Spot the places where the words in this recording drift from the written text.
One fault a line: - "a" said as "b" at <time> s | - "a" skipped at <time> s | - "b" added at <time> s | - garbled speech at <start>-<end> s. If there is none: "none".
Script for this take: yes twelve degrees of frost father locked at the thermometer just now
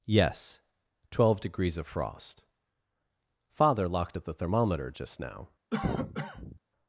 none